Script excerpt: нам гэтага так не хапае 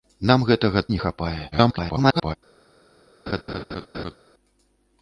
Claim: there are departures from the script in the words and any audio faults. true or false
true